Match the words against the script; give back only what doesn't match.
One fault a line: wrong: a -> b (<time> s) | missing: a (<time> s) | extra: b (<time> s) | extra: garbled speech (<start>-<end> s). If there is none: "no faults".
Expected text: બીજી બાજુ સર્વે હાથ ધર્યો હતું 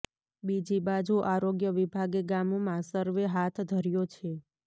extra: આરોગ્ય વિભાગે ગામમાં (1.2 s)
wrong: હતું -> છે (4.1 s)